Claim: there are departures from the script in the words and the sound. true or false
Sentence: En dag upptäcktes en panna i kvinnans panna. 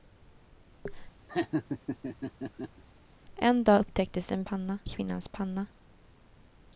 true